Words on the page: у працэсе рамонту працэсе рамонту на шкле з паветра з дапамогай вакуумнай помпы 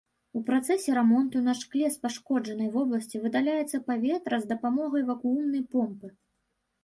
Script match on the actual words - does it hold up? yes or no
no